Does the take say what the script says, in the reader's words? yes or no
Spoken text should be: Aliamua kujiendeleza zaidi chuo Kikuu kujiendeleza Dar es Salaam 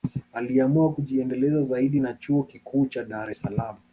no